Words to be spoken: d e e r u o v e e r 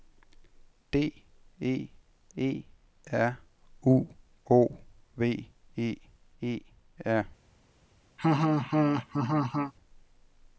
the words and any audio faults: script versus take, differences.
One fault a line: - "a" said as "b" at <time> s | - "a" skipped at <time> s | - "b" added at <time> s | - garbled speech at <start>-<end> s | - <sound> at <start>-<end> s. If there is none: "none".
- laugh at 8.2-9.7 s